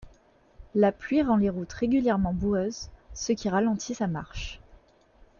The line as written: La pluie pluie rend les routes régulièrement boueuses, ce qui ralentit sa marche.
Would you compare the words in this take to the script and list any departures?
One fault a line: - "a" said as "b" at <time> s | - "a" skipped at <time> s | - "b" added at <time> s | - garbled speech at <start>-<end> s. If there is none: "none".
- "pluie" skipped at 1.2 s